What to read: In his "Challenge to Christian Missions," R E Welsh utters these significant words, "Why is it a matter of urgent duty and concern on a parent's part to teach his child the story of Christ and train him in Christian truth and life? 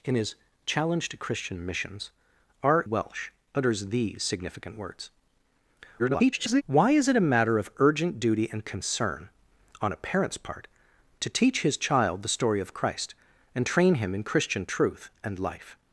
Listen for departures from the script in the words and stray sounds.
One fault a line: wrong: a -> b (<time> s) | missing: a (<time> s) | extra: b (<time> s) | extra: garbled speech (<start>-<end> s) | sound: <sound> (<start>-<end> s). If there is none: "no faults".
missing: E (2.9 s)
extra: garbled speech (6.0-6.6 s)